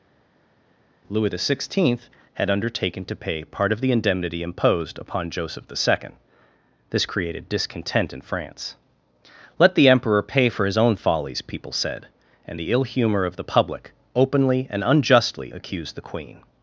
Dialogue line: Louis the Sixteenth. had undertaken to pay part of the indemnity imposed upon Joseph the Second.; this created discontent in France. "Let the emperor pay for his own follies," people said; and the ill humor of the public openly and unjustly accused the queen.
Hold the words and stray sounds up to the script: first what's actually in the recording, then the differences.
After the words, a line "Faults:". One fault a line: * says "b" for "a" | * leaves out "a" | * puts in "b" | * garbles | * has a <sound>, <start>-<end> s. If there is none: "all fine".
Louis the Sixteenth. had undertaken to pay part of the indemnity imposed upon Joseph the Second.; this created discontent in France. "Let the emperor pay for his own follies," people said; and the ill humor of the public openly and unjustly accused the queen.
Faults:
all fine